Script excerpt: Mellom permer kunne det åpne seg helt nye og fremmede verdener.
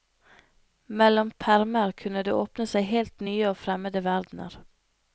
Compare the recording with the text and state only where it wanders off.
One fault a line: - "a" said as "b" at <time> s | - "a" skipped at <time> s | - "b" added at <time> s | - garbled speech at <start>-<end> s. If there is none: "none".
none